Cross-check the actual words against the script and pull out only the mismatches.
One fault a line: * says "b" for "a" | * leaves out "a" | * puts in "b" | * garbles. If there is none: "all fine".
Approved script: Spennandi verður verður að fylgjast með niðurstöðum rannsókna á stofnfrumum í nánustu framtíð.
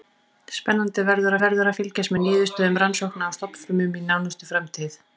all fine